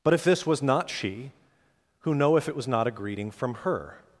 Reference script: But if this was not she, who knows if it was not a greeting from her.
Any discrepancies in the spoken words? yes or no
yes